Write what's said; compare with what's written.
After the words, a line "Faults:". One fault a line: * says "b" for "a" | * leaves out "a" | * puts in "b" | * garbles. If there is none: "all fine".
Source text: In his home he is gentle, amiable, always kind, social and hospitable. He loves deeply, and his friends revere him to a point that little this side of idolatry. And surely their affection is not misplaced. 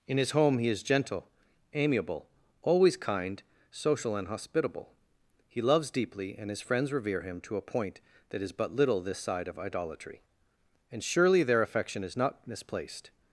In his home he is gentle, amiable, always kind, social and hospitable. He loves deeply, and his friends revere him to a point that is but little this side of idolatry. And surely their affection is not misplaced.
Faults:
* puts in "is but"